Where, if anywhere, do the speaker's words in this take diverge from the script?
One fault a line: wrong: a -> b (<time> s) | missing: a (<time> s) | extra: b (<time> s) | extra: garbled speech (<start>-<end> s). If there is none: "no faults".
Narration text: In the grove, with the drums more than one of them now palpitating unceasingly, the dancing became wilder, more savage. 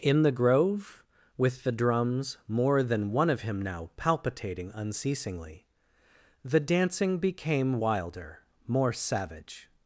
wrong: them -> him (3.4 s)